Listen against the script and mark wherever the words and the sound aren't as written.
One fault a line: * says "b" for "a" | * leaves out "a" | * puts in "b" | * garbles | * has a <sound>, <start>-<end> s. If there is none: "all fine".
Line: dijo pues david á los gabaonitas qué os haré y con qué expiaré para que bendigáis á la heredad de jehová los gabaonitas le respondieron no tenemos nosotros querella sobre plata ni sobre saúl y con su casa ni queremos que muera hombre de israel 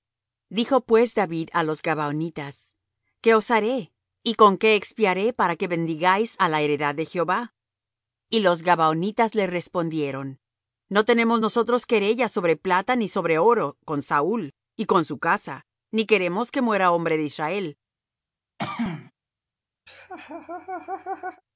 * puts in "y"
* puts in "oro con"
* has a throat clearing, 18.6-19.1 s
* has a laugh, 19.9-21.4 s